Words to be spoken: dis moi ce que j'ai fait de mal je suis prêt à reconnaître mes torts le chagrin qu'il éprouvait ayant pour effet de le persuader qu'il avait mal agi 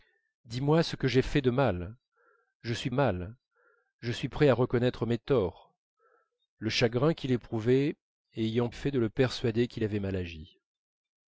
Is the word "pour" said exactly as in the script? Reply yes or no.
no